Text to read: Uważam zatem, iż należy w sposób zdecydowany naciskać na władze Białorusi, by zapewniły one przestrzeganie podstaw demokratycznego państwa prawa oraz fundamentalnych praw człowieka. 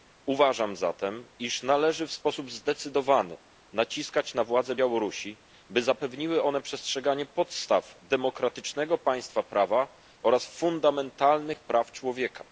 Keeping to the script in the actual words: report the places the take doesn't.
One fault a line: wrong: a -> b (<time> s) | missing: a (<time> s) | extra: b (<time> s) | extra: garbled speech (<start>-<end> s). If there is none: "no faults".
no faults